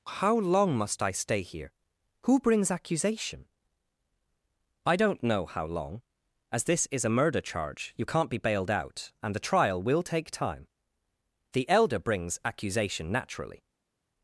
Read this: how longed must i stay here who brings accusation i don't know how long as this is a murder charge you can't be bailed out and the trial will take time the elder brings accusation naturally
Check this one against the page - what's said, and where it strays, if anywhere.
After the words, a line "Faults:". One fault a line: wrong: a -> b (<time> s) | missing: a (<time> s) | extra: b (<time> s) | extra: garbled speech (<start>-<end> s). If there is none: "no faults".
how long must i stay here who brings accusation i don't know how long as this is a murder charge you can't be bailed out and the trial will take time the elder brings accusation naturally
Faults:
wrong: longed -> long (0.4 s)